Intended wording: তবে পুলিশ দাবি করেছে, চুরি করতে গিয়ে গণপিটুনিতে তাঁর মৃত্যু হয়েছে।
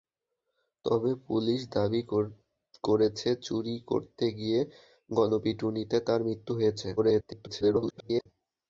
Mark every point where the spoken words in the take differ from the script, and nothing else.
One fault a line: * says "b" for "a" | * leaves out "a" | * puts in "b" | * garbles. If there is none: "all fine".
* garbles